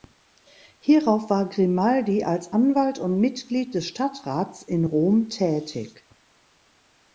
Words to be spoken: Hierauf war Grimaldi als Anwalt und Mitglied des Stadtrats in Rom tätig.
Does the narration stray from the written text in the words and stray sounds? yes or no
no